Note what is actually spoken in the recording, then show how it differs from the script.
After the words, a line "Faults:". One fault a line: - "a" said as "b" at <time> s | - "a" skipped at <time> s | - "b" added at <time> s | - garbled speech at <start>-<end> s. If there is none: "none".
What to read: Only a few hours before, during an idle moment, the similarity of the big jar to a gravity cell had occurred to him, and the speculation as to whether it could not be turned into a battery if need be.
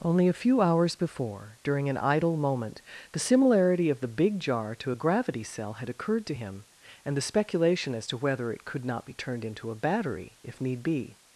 Only a few hours before, during an idle moment, the similarity of the big jar to a gravity cell had occurred to him, and the speculation as to whether it could not be turned into a battery if need be.
Faults:
none